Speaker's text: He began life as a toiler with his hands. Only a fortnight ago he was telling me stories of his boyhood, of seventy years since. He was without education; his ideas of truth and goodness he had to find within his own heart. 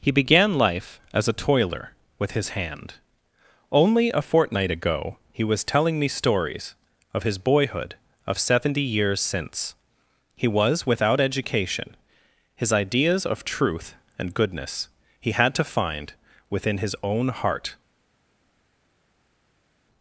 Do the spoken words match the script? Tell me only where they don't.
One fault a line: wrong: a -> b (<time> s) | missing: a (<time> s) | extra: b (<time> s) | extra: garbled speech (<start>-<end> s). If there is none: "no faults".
wrong: hands -> hand (2.5 s)